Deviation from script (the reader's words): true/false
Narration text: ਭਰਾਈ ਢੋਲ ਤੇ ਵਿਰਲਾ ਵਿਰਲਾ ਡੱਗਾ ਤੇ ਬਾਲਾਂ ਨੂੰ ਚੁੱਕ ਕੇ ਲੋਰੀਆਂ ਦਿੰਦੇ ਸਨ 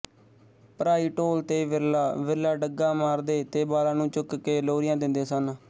true